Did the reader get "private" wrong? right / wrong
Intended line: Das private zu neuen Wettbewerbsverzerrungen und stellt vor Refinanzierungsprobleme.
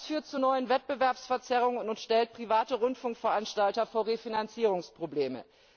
wrong